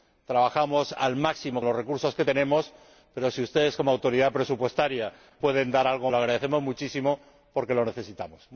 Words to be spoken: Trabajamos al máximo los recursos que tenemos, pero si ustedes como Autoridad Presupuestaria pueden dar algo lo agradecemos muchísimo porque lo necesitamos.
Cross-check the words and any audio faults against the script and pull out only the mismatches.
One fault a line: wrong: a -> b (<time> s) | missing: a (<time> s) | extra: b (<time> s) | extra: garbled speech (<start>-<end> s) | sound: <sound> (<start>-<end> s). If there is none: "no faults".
no faults